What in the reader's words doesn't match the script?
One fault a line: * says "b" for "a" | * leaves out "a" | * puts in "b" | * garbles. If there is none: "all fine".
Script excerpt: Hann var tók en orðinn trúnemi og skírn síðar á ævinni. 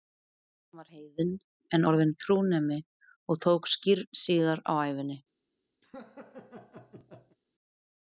* says "heiðinn" for "tók"
* puts in "tók"